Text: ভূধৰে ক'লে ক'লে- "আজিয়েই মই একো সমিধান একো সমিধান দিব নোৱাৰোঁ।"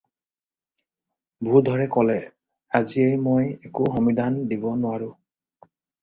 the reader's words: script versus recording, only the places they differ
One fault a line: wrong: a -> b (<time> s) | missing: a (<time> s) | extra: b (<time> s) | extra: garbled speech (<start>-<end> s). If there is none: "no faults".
missing: ক'লে (2.1 s)
missing: একো সমিধান (4.4 s)